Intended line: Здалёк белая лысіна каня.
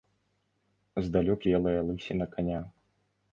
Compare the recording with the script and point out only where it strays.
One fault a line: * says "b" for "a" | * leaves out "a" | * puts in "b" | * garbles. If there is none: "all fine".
all fine